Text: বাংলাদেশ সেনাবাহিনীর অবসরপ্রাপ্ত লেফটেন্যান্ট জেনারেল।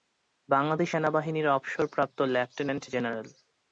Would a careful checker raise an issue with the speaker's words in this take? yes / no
no